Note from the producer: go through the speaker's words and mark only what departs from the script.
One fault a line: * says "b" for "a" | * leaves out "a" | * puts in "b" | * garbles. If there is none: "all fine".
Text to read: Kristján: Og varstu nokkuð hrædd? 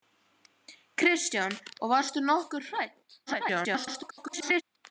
* garbles